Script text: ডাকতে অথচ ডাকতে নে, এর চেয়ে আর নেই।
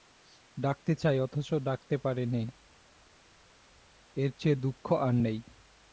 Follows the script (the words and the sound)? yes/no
no